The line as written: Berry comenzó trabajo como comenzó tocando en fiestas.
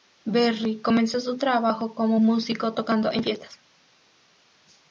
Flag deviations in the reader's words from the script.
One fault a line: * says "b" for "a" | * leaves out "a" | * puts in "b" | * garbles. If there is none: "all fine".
* puts in "su"
* says "músico" for "comenzó"